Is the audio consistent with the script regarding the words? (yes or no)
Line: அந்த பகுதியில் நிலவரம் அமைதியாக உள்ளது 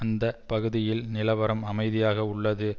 yes